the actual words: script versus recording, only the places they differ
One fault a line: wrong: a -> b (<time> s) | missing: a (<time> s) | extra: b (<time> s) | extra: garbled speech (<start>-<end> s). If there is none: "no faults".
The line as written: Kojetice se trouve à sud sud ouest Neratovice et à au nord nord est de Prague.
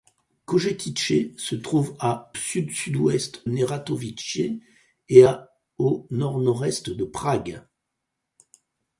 no faults